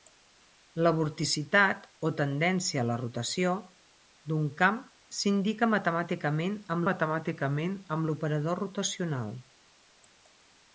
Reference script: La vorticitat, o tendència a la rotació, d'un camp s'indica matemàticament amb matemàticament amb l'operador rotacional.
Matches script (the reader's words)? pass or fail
pass